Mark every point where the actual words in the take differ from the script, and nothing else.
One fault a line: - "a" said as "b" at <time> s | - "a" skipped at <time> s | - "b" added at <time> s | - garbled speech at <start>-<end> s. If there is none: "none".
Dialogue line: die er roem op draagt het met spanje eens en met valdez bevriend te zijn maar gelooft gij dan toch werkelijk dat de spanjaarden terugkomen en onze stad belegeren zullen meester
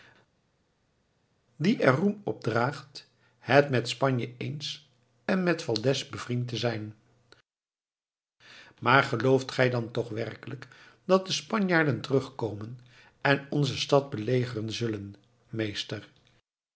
none